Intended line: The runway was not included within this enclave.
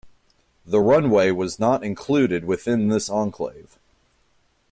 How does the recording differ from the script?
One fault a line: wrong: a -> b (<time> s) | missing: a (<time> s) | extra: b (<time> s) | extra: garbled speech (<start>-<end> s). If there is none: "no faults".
no faults